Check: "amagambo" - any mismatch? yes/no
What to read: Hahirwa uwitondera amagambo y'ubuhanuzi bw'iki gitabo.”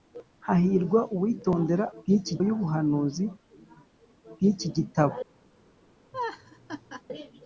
yes